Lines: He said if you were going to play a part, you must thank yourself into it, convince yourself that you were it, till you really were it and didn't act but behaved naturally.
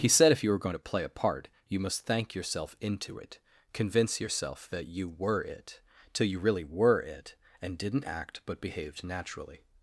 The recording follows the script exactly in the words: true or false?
true